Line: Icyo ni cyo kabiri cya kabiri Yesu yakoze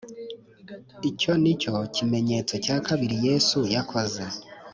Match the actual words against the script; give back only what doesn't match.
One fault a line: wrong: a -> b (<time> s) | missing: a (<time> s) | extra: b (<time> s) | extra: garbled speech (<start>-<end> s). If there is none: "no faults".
wrong: kabiri -> kimenyetso (1.9 s)